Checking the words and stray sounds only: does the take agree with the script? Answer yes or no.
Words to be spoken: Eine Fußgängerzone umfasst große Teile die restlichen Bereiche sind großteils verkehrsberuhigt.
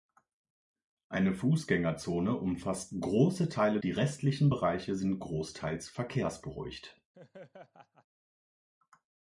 no